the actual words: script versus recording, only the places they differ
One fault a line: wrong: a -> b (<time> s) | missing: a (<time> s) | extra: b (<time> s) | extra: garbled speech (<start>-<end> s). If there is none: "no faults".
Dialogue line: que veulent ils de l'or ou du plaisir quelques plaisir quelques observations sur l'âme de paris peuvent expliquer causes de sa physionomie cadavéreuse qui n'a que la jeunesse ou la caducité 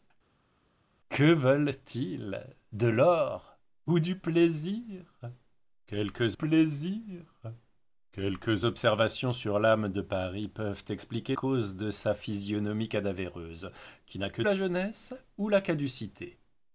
no faults